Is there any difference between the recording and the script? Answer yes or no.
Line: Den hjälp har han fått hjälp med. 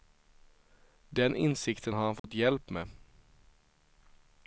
yes